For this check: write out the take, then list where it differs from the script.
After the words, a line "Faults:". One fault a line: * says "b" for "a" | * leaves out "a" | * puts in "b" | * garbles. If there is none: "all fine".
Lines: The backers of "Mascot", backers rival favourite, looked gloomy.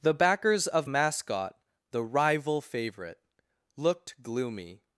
The backers of "Mascot", the rival favourite, looked gloomy.
Faults:
* says "the" for "backers"